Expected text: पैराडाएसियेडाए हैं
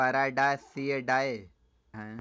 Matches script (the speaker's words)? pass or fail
pass